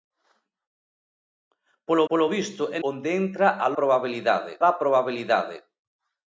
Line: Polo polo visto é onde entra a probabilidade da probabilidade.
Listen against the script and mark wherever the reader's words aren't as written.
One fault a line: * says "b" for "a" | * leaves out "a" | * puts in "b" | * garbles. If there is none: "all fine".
all fine